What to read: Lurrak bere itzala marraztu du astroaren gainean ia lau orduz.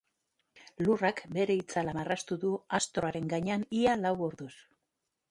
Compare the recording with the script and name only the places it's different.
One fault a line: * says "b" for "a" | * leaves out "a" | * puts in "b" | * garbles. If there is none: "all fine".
all fine